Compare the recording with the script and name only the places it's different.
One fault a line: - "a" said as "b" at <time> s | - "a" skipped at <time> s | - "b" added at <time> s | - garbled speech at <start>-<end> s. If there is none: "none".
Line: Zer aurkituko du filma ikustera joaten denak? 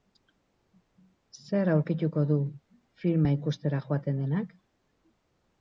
none